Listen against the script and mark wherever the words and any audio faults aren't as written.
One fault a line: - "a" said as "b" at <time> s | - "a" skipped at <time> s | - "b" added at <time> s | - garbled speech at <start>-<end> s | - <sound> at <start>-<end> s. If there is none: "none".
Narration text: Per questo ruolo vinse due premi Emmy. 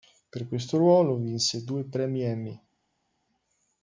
none